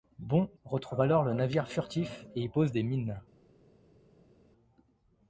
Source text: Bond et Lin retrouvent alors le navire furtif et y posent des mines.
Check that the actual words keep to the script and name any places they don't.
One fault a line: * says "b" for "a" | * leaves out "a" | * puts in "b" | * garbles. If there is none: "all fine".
* leaves out "et Lin"